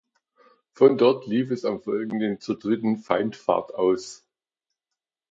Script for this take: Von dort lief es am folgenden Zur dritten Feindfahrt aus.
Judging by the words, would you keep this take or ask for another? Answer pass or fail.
pass